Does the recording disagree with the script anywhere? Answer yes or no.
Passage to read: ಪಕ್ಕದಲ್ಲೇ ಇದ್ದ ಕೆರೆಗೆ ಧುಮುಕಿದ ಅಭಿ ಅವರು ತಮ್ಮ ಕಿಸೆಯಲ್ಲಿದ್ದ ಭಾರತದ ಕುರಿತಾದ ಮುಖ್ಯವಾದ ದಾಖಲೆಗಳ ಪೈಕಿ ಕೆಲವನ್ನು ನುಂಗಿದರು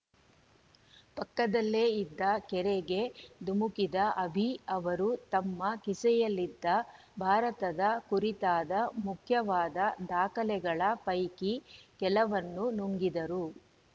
no